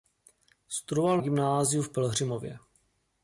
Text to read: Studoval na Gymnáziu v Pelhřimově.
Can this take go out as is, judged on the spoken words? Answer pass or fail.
fail